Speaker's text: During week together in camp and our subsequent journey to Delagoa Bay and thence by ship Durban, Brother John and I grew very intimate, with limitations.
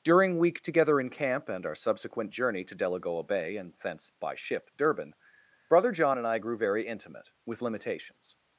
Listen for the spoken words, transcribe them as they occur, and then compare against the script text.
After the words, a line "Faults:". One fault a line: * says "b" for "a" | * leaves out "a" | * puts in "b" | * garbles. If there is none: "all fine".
During week together in camp and our subsequent journey to Delagoa Bay and thence by ship Durban, Brother John and I grew very intimate, with limitations.
Faults:
all fine